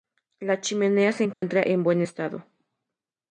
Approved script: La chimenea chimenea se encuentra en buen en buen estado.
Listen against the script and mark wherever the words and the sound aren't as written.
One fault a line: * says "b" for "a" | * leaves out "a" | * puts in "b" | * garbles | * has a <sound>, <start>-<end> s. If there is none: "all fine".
* leaves out "chimenea"
* has a dropout, 1.3-1.4 s
* leaves out "en buen"